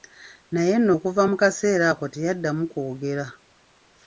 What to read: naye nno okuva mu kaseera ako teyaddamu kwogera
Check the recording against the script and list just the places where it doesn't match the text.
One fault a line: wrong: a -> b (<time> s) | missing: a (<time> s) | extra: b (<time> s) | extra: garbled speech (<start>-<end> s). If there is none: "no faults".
no faults